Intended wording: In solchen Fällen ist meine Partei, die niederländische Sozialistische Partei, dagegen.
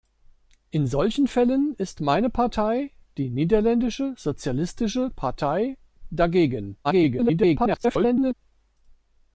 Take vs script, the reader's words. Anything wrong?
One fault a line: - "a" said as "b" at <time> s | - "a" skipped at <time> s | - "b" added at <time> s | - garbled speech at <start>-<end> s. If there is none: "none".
- garbled speech at 6.8-8.3 s